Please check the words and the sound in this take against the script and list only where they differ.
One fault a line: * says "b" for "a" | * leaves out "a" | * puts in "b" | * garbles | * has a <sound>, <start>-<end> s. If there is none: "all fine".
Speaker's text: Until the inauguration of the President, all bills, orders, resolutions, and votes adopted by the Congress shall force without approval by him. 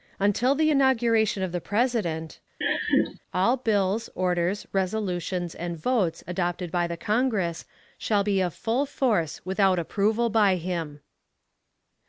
* has a laugh, 2.6-3.2 s
* puts in "be of full"